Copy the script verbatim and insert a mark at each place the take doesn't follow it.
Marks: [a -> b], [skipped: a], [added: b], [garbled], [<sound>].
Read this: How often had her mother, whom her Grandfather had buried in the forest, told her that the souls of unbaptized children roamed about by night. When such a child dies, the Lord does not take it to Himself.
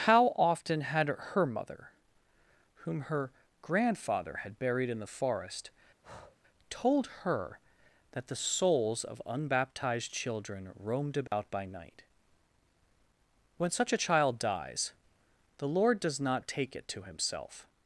How often had her mother, whom her Grandfather had buried in the forest, [breath] told her that the souls of unbaptized children roamed about [dropout] by night. When such a child dies, the Lord does not take it to Himself.